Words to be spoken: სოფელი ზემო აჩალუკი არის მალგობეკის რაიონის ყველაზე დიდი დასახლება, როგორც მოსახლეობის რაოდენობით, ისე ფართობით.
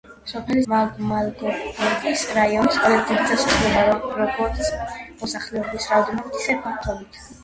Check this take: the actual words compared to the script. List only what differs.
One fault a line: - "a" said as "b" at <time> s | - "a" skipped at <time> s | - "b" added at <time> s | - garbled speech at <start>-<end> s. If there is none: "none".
- "ზემო აჩალუკი არის" skipped at 0.6 s